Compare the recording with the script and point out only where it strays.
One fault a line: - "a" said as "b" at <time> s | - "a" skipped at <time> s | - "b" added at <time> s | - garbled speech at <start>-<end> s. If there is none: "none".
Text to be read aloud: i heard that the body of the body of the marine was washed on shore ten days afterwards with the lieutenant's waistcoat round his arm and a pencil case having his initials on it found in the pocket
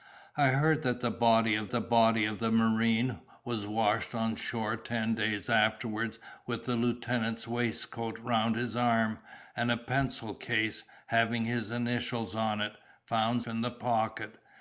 none